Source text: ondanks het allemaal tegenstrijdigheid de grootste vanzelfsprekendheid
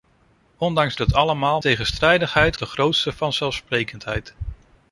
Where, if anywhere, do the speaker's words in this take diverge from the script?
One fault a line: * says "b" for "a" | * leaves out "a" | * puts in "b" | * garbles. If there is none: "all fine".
all fine